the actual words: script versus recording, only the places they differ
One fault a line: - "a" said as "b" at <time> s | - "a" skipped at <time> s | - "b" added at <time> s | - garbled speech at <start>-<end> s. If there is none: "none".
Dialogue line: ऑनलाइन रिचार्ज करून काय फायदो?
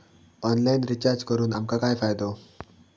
- "आमका" added at 1.5 s